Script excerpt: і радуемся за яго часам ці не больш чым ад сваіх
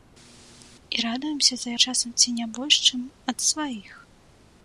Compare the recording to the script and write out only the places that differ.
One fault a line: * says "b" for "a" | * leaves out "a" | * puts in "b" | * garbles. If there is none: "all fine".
* leaves out "яго"